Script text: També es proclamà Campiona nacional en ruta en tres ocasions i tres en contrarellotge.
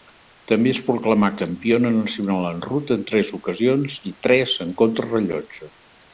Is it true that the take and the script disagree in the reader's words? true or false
false